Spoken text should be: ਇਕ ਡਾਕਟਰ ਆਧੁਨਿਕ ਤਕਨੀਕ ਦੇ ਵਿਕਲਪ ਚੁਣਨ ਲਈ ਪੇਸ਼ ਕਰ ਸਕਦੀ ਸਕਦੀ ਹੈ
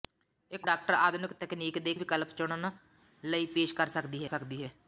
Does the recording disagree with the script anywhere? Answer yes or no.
no